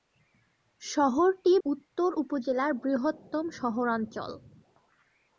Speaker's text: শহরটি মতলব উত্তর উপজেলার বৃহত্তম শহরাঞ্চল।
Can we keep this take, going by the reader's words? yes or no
no